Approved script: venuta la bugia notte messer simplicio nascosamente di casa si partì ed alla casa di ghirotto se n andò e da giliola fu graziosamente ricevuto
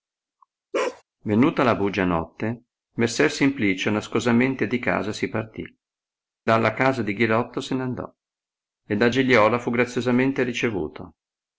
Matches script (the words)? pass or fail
fail